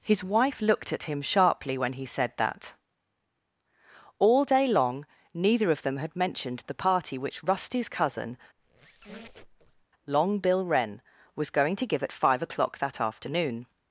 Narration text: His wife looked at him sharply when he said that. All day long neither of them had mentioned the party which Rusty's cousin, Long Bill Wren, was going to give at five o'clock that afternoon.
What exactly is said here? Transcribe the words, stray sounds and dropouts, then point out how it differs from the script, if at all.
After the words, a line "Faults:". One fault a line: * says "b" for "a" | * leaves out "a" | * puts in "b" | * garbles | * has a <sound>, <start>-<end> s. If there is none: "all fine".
His wife looked at him sharply when he said that. All day long neither of them had mentioned the party which Rusty's cousin, Long Bill Wren, was going to give at five o'clock that afternoon.
Faults:
* has a squeak, 8.6-9.9 s